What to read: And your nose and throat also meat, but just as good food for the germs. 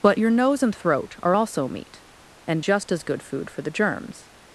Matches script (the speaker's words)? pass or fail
fail